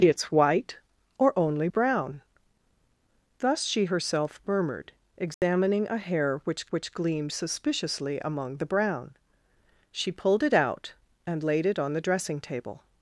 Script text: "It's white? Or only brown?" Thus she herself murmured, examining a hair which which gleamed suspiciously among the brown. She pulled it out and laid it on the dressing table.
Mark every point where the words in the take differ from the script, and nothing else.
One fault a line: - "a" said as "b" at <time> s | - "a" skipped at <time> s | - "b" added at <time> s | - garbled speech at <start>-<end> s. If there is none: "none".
none